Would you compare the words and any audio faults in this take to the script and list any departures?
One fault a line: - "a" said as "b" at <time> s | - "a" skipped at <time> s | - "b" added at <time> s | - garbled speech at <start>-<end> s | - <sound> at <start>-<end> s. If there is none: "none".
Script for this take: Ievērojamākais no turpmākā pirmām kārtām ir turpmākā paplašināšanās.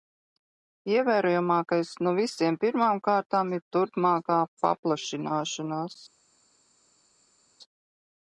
- "turpmākā" said as "visiem" at 2.2 s